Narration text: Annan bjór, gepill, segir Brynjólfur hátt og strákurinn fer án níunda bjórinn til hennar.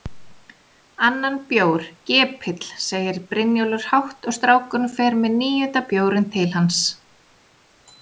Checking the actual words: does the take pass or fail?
fail